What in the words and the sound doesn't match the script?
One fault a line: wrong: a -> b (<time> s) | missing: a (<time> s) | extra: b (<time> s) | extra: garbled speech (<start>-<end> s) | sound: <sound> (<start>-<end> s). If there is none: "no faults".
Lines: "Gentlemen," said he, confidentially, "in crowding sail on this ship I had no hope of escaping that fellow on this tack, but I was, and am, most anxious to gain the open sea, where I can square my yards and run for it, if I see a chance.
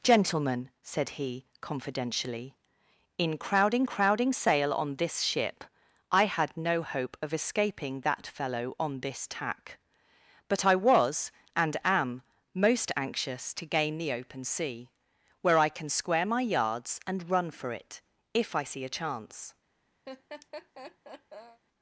extra: crowding (3.8 s)
sound: laugh (20.1-21.6 s)